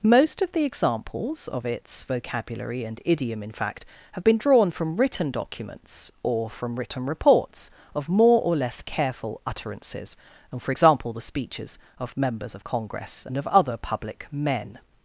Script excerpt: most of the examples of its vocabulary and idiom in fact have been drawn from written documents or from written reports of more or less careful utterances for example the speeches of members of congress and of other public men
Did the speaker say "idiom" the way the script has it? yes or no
yes